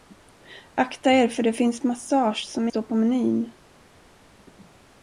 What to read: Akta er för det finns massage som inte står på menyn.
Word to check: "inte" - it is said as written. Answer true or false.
false